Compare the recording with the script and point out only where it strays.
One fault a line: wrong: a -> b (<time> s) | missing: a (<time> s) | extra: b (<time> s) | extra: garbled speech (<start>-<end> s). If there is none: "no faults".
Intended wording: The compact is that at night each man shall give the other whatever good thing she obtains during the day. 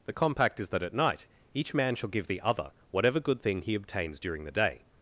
wrong: she -> he (3.6 s)